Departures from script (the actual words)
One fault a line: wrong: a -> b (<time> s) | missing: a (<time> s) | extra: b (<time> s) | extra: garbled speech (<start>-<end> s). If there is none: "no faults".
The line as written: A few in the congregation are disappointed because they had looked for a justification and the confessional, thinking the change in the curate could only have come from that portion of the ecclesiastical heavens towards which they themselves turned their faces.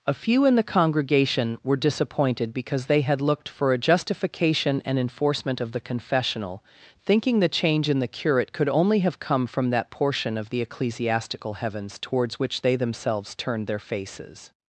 wrong: are -> were (1.6 s)
extra: enforcement of (5.0 s)